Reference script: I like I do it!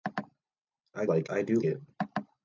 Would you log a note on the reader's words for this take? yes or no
no